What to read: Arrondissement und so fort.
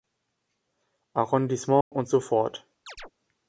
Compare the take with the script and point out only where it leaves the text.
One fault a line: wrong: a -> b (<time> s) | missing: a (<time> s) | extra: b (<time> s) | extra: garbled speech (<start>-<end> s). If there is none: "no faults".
no faults